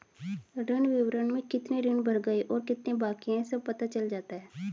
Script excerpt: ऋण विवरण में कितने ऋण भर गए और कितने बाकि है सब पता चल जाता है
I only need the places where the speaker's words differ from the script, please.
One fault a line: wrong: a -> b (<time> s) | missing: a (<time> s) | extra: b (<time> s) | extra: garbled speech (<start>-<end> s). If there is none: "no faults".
no faults